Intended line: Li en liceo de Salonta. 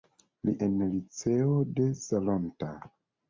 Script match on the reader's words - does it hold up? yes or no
yes